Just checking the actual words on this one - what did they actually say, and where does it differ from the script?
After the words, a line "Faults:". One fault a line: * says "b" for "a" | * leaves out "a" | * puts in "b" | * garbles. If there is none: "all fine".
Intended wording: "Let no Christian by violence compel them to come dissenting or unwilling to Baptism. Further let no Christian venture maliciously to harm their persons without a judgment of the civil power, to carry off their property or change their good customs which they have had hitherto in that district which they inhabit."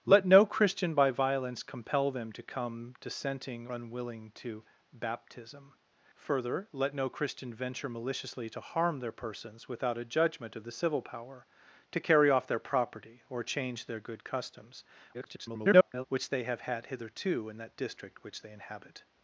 "Let no Christian by violence compel them to come dissenting unwilling to Baptism. Further let no Christian venture maliciously to harm their persons without a judgment of the civil power, to carry off their property or change their good customs [garbled] which they have had hitherto in that district which they inhabit."
Faults:
* leaves out "or"
* garbles